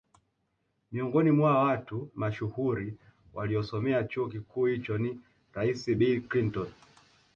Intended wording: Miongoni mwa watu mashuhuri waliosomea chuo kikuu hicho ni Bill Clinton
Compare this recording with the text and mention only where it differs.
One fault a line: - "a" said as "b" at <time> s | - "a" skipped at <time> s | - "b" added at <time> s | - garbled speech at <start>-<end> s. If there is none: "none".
- "rais" added at 5.5 s